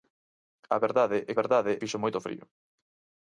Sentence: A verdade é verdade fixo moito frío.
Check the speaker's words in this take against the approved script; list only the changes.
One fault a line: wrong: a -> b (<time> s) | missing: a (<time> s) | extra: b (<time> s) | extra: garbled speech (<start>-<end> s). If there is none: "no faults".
no faults